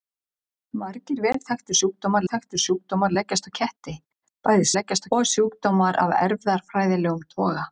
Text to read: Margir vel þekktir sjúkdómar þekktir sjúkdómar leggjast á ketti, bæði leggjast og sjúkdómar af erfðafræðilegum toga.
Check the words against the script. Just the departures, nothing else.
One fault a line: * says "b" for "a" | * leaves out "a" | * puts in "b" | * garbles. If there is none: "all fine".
all fine